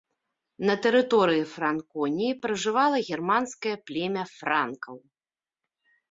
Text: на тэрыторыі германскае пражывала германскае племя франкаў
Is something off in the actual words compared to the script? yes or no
yes